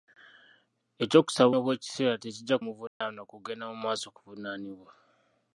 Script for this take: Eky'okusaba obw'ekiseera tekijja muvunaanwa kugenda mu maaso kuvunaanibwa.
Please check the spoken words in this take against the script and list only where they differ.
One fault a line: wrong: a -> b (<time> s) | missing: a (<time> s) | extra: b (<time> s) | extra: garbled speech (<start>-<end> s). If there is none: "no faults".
no faults